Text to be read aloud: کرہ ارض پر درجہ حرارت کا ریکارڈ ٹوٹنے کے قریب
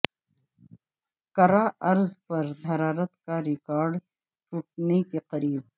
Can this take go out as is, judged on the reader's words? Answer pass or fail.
fail